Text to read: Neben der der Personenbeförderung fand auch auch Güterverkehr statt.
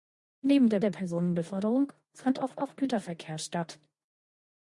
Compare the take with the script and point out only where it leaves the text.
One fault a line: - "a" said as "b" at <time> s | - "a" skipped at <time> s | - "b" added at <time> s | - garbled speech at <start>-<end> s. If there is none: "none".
none